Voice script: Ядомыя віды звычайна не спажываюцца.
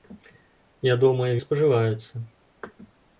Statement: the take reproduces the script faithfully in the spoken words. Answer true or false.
false